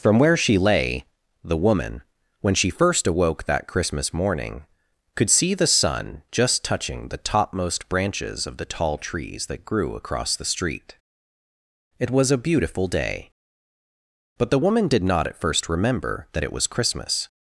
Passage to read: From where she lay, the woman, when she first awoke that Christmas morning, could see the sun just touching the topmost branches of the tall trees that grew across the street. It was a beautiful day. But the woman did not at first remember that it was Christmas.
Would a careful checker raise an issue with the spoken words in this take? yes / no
no